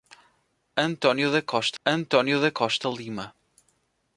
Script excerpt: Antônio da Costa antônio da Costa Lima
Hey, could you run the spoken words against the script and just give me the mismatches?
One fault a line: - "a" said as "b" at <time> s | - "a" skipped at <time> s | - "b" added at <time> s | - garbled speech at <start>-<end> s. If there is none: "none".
none